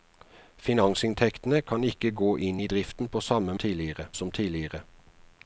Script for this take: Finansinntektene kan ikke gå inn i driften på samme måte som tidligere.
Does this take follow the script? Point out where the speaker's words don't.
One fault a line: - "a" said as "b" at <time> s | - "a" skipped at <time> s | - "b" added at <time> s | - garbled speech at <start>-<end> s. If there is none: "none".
- "måte" said as "tidligere" at 3.6 s